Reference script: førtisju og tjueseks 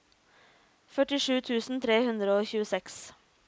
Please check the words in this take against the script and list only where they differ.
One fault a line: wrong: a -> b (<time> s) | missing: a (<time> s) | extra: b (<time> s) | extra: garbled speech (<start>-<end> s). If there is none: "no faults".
extra: tusen tre hundre (1.5 s)